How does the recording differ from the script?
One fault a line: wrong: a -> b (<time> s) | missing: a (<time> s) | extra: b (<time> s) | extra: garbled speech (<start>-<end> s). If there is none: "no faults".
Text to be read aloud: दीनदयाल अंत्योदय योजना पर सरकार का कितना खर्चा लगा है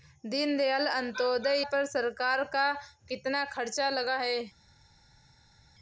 missing: योजना (1.6 s)